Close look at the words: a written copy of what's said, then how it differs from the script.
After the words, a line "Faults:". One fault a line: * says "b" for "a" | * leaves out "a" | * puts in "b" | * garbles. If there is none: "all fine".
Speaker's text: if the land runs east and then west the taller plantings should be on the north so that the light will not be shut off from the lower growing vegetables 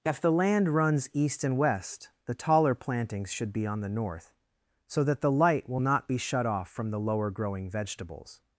if the land runs east and west the taller plantings should be on the north so that the light will not be shut off from the lower growing vegetables
Faults:
* leaves out "then"